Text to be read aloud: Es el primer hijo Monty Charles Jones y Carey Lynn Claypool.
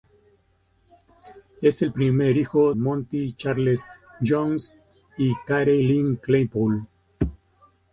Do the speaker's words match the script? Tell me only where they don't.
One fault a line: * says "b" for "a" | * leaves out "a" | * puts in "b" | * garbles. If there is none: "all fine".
all fine